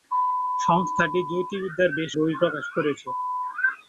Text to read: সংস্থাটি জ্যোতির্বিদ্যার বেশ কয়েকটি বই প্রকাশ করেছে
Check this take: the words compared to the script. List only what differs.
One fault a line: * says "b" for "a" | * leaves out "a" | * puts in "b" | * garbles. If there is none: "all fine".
* leaves out "কয়েকটি"